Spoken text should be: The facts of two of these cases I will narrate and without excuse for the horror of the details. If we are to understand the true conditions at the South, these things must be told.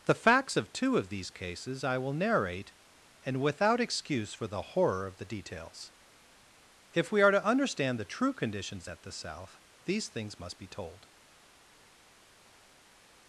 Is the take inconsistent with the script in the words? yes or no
no